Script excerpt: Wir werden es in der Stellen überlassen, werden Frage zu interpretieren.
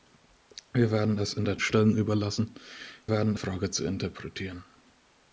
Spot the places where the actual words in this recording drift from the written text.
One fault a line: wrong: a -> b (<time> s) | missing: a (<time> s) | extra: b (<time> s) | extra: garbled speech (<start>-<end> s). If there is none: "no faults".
no faults